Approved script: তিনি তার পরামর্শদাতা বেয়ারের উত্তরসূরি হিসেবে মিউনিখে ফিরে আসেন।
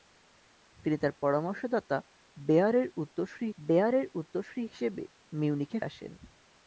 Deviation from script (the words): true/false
true